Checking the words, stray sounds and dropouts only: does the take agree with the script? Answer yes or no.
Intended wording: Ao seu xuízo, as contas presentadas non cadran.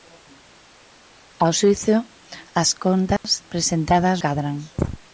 no